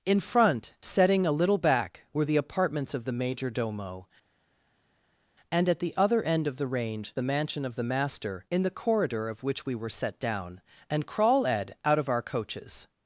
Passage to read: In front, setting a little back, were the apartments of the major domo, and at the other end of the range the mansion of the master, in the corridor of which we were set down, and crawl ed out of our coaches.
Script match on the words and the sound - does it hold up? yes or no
yes